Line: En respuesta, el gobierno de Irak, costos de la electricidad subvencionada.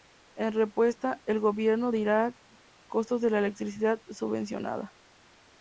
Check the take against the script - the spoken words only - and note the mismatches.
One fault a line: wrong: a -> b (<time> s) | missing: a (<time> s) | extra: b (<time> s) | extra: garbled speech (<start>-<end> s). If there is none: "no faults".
no faults